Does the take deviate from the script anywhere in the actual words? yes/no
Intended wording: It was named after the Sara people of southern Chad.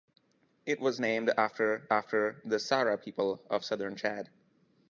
yes